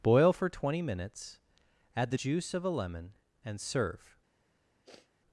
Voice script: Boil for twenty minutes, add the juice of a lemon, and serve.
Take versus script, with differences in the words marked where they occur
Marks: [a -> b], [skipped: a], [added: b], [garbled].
Boil for twenty minutes, add the juice of a lemon, and serve.